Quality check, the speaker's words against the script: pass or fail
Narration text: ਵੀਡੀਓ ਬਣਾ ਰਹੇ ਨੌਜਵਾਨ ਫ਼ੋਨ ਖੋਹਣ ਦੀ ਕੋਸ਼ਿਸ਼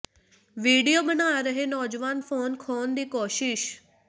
pass